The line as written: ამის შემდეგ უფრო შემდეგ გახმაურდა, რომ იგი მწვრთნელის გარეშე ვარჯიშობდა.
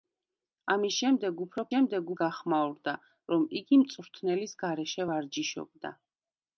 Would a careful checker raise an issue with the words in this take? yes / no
no